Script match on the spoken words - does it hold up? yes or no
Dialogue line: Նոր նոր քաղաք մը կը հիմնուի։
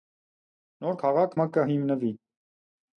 no